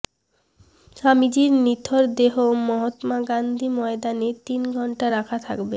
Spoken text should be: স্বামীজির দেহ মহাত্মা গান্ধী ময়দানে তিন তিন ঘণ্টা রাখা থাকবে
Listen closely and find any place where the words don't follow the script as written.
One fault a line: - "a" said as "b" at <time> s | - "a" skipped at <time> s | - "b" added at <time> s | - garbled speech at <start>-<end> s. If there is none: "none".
- "নিথর" added at 1.6 s
- "তিন" skipped at 4.6 s